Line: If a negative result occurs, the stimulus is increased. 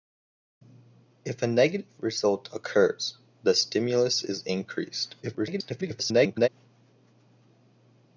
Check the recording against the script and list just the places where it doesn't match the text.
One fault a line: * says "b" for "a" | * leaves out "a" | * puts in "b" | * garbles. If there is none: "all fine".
* garbles